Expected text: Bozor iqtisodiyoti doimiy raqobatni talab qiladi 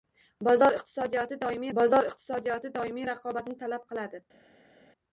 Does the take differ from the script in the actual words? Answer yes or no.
yes